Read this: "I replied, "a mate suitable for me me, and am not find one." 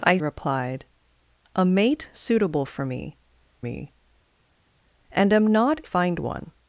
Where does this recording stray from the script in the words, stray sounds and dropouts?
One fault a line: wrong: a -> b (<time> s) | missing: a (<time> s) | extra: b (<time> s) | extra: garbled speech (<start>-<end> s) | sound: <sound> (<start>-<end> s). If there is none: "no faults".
no faults